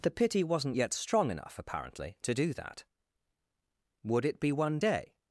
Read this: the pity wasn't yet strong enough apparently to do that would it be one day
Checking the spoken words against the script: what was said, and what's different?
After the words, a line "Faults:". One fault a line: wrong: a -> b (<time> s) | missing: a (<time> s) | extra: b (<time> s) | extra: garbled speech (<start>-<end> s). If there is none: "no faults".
the pity wasn't yet strong enough apparently to do that would it be one day
Faults:
no faults